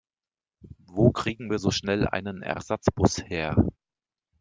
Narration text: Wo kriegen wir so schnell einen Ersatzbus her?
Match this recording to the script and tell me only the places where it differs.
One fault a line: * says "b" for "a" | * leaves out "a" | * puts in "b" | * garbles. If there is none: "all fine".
all fine